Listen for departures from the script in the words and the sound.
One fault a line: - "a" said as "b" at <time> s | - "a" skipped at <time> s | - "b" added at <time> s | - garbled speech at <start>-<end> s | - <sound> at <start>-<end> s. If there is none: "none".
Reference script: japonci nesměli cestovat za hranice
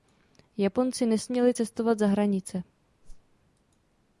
- whoosh at 3.0-3.4 s